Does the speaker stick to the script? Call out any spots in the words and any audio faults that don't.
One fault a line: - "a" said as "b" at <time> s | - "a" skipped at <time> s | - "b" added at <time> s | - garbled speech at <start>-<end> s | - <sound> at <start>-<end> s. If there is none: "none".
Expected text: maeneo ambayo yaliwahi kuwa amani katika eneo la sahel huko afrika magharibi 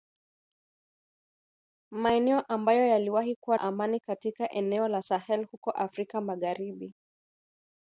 none